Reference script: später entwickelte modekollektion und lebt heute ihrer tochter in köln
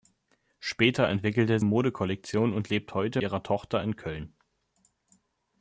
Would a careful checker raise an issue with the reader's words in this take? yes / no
no